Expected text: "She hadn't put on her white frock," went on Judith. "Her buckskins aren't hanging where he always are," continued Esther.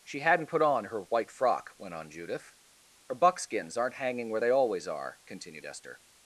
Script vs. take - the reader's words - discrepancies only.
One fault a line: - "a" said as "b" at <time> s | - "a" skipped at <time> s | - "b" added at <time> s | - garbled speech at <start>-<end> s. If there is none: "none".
- "he" said as "they" at 4.4 s